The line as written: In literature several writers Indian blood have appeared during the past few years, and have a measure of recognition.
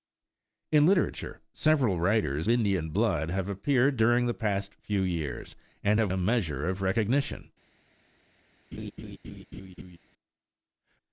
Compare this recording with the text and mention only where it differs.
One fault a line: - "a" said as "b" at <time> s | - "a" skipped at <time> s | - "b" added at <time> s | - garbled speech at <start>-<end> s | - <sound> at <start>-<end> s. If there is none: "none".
- laugh at 8.7-10.0 s